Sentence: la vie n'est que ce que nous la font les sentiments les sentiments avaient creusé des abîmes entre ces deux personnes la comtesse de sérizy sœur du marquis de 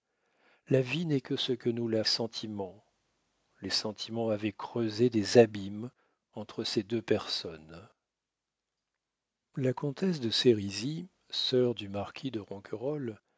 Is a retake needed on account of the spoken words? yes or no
yes